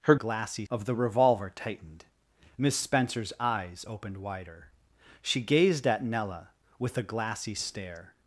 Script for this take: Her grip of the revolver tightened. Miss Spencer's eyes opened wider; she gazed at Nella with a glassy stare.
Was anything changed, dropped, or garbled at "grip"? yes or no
yes